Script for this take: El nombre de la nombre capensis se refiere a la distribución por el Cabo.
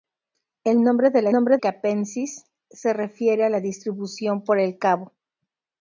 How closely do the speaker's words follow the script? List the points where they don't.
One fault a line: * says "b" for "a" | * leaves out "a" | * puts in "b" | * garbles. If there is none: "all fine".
all fine